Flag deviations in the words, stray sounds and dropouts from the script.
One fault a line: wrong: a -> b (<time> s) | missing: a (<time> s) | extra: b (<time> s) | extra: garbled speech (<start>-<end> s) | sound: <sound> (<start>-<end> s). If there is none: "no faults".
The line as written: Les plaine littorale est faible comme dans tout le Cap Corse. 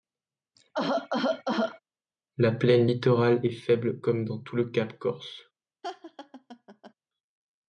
sound: cough (0.5-1.8 s)
wrong: Les -> La (2.4 s)
sound: laugh (5.8-6.9 s)